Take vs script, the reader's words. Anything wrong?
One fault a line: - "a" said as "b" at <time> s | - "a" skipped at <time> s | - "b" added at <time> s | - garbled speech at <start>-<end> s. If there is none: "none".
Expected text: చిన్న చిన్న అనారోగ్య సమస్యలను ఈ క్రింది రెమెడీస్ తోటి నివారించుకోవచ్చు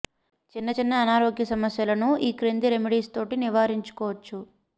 none